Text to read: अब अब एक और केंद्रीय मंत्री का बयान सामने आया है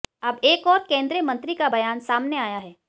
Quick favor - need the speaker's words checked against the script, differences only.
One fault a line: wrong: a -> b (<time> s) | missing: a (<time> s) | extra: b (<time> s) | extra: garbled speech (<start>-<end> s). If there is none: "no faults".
missing: अब (0.4 s)